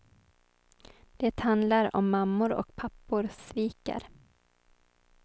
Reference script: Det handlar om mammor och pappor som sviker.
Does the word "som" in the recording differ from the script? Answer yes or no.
yes